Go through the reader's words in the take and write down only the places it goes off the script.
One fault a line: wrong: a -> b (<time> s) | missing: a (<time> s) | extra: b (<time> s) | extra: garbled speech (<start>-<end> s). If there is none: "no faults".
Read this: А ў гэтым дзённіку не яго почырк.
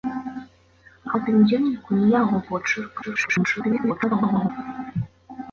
missing: ў (1.1 s)
extra: garbled speech (3.0-4.5 s)